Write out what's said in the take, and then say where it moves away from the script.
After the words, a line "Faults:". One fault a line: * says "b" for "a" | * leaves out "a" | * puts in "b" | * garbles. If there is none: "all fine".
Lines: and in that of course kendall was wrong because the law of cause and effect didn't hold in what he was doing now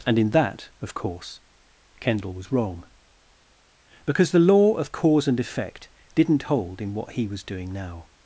and in that of course kendall was wrong because the law of cause and effect didn't hold in what he was doing now
Faults:
all fine